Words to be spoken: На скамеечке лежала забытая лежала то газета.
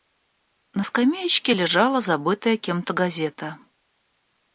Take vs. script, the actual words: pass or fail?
fail